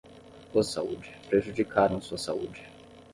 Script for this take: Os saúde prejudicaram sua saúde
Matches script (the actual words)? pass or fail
pass